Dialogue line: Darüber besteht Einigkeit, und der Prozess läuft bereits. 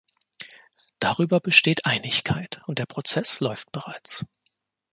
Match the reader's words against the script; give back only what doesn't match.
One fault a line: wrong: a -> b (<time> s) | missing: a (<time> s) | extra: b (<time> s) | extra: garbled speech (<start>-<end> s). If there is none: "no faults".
no faults